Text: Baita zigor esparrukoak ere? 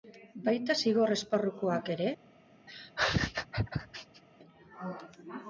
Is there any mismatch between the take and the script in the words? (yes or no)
no